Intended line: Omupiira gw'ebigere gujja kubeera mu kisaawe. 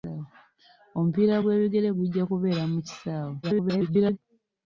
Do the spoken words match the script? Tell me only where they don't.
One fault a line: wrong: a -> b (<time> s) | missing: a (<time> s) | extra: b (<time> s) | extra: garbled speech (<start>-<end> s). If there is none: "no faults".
extra: garbled speech (3.4-4.2 s)